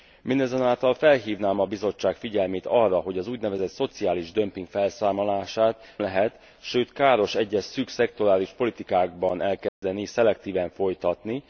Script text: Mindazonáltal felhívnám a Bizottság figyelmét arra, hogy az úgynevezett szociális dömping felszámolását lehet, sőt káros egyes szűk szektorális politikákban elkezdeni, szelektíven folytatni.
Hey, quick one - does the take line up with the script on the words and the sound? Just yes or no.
no